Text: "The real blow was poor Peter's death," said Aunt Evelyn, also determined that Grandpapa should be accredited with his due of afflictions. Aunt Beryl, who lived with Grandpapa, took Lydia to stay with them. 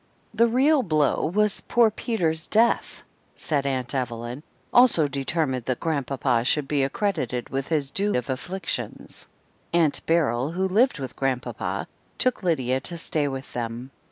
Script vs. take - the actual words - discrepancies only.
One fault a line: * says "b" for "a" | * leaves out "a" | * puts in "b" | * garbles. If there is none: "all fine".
all fine